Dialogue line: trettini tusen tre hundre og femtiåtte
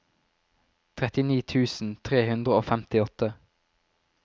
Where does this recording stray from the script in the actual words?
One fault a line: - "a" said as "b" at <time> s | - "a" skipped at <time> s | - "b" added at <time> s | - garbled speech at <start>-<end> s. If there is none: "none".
none